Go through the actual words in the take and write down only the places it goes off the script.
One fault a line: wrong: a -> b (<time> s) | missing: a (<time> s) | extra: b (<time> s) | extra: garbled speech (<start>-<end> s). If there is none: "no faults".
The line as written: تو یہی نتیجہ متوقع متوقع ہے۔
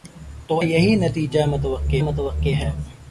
no faults